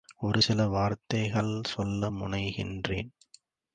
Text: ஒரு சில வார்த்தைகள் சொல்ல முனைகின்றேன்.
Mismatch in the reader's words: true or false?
false